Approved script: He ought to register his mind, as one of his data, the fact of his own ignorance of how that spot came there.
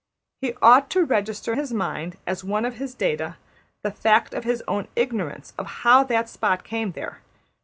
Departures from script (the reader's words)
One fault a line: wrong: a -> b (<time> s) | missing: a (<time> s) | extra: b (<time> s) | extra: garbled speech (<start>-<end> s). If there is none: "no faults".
no faults